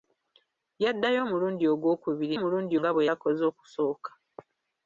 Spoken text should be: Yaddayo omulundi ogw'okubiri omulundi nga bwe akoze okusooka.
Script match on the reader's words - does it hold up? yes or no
yes